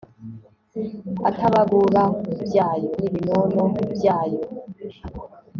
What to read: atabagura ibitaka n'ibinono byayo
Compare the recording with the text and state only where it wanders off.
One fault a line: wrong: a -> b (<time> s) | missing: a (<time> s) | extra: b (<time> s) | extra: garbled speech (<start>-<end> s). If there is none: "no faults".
wrong: ibitaka -> byayo (2.4 s)